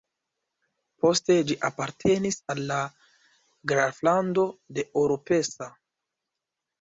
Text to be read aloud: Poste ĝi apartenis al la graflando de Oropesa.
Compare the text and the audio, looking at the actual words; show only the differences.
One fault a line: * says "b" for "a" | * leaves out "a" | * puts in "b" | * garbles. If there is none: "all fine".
all fine